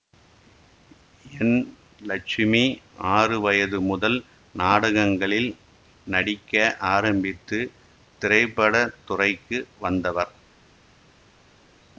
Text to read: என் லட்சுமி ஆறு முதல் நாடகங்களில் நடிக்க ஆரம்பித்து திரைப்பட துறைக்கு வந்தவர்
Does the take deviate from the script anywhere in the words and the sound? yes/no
yes